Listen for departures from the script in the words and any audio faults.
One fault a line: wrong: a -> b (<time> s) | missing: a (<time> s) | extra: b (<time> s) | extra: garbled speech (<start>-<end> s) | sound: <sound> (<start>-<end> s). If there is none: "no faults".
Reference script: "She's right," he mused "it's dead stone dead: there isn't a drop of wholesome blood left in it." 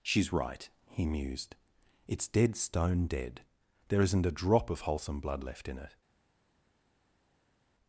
no faults